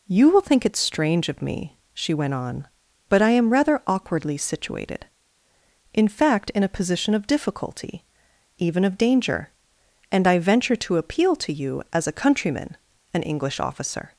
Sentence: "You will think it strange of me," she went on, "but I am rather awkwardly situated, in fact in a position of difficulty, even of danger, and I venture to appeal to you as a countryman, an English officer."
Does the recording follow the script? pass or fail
pass